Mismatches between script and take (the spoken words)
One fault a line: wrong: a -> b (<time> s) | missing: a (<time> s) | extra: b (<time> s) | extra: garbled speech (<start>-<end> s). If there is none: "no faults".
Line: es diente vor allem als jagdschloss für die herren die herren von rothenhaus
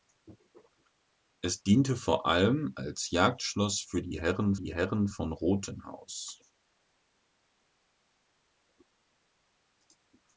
no faults